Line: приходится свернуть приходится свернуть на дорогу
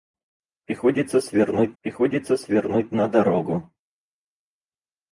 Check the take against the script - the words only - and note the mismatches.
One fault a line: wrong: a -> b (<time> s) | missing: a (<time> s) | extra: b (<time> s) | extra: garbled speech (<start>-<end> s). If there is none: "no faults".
no faults